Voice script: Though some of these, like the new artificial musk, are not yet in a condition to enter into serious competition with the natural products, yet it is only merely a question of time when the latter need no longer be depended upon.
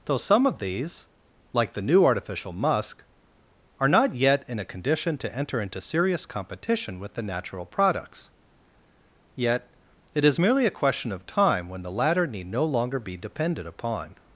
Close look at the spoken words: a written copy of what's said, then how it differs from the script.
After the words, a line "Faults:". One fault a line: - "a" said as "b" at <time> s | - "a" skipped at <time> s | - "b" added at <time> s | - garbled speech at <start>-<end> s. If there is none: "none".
Though some of these, like the new artificial musk, are not yet in a condition to enter into serious competition with the natural products, yet it is merely a question of time when the latter need no longer be depended upon.
Faults:
- "only" skipped at 10.4 s